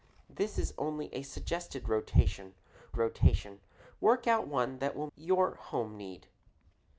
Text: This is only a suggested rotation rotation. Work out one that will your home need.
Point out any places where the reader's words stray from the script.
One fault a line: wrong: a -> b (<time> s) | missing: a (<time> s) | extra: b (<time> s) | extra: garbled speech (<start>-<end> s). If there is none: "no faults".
no faults